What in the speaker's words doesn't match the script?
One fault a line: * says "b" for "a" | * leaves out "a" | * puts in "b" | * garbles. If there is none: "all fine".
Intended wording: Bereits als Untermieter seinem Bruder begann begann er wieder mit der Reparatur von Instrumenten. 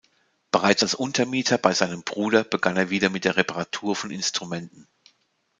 * puts in "bei"
* leaves out "begann"